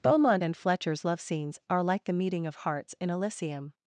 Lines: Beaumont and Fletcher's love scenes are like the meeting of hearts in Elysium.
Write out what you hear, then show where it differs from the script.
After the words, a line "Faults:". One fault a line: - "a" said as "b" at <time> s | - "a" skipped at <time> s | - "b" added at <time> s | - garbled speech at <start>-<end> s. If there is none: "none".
Beaumont and Fletcher's love scenes are like the meeting of hearts in Elysium.
Faults:
none